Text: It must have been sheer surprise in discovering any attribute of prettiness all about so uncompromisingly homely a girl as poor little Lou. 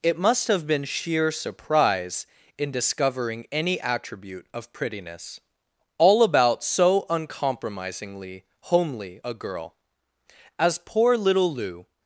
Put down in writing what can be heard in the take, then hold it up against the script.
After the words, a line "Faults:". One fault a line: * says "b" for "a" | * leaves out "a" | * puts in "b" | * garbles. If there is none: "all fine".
It must have been sheer surprise in discovering any attribute of prettiness all about so uncompromisingly homely a girl as poor little Lou.
Faults:
all fine